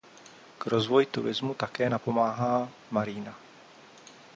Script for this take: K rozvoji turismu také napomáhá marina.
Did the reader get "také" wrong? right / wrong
right